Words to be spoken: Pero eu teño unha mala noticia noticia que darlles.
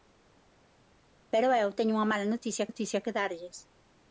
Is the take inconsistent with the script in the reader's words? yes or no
no